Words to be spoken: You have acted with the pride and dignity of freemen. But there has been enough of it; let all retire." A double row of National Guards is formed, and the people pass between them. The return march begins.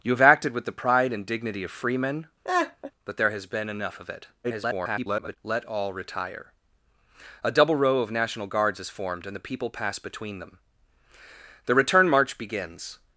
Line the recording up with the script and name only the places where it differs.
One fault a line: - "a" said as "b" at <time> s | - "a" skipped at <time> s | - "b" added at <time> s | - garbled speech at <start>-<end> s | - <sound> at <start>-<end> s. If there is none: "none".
- laugh at 2.4-2.9 s
- garbled speech at 4.4-5.4 s